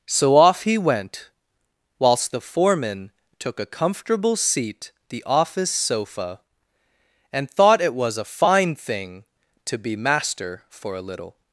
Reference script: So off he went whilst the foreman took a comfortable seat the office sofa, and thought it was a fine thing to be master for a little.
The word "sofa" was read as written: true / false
true